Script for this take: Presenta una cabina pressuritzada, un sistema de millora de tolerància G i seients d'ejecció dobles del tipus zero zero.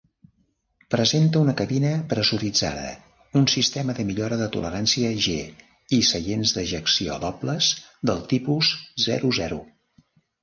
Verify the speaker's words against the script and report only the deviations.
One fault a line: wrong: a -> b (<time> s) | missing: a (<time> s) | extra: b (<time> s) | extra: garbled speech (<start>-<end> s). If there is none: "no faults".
no faults